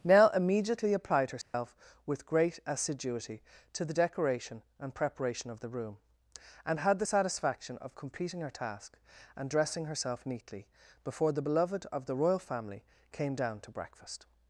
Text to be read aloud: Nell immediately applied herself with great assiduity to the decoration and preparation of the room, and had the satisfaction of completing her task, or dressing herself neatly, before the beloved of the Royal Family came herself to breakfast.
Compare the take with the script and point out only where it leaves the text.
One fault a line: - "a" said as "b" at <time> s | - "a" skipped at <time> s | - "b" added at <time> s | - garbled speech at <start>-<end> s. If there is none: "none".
- "or" said as "and" at 9.4 s
- "herself" said as "down" at 13.4 s